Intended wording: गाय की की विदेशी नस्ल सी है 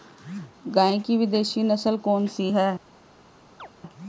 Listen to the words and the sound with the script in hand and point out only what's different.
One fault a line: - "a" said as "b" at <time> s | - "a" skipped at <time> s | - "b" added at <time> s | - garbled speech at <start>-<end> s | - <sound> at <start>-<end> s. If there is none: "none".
- "की" skipped at 1.2 s
- "कौन" added at 2.0 s
- chirp at 3.6-3.7 s